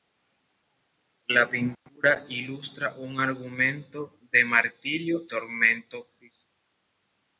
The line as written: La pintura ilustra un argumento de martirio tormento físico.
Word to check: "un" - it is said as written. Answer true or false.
true